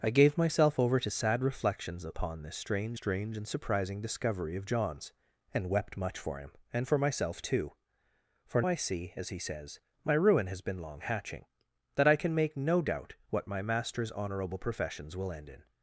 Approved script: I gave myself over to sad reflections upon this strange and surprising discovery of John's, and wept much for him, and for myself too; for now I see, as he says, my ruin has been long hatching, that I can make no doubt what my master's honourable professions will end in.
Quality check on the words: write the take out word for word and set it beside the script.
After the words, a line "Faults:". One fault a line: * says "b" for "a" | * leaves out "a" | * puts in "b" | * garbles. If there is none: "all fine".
I gave myself over to sad reflections upon this strange strange and surprising discovery of John's, and wept much for him, and for myself too; for I see, as he says, my ruin has been long hatching, that I can make no doubt what my master's honourable professions will end in.
Faults:
* puts in "strange"
* leaves out "now"